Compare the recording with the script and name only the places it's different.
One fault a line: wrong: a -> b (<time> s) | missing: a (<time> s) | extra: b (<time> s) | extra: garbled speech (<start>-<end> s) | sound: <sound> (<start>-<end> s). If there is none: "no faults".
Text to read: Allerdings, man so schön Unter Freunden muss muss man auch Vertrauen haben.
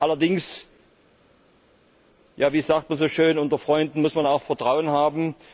extra: wie sagt (2.3 s)
missing: muss (4.1 s)